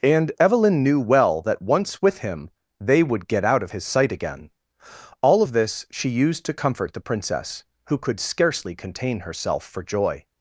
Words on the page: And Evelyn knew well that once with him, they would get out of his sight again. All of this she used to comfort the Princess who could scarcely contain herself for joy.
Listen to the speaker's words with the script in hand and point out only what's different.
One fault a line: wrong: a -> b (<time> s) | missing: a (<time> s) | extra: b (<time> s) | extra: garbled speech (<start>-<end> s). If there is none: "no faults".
no faults